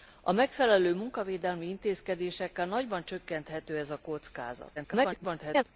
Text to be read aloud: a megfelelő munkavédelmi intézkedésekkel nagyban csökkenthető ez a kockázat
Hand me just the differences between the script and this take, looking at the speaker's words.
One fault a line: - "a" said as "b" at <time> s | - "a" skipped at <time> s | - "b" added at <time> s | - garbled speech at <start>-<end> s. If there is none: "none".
- garbled speech at 4.8-5.6 s